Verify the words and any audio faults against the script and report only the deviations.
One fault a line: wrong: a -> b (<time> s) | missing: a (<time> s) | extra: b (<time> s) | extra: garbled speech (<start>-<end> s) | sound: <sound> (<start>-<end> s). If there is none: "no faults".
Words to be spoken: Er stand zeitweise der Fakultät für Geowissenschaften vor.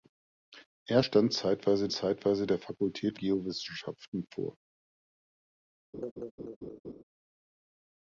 extra: zeitweise (1.9 s)
missing: für (3.2 s)
sound: laugh (5.9-7.0 s)